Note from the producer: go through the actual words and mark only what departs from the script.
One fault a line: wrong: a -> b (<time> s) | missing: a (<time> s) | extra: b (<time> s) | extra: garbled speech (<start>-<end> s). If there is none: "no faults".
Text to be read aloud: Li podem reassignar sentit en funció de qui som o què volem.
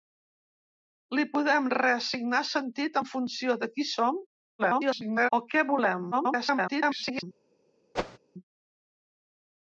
extra: garbled speech (4.6-5.3 s)
extra: garbled speech (6.1-7.2 s)